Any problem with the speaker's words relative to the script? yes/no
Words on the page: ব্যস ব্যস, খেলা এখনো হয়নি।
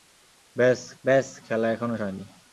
no